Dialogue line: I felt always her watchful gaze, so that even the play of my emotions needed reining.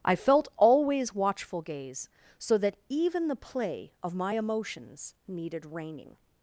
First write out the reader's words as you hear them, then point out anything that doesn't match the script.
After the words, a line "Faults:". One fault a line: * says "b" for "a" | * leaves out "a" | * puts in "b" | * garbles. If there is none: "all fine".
I felt always watchful gaze, so that even the play of my emotions needed reining.
Faults:
* leaves out "her"